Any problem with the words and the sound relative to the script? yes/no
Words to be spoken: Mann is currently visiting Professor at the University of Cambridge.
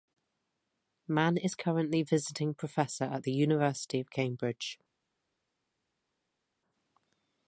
no